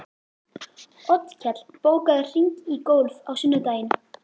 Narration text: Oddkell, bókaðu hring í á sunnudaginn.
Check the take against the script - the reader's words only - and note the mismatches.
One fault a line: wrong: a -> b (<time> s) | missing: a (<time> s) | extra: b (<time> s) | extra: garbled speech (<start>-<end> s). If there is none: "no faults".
extra: golf (2.9 s)